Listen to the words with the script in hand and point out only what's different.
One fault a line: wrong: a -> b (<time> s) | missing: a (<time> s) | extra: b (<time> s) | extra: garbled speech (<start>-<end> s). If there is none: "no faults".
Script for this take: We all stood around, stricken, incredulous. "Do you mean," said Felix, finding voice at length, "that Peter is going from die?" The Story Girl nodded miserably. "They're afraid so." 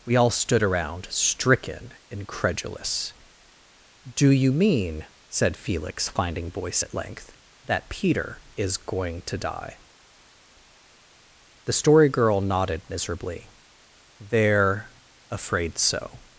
wrong: from -> to (9.2 s)